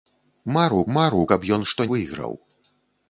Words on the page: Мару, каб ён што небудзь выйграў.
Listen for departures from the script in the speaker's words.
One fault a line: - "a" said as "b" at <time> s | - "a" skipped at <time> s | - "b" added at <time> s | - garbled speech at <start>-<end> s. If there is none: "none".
- "мару" added at 1.0 s
- "небудзь" skipped at 1.9 s